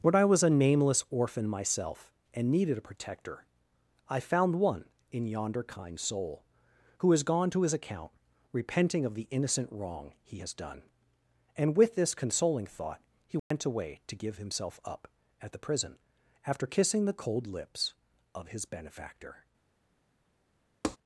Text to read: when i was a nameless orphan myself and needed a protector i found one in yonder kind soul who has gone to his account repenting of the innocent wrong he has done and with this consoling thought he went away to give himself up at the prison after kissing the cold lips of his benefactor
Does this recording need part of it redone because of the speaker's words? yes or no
no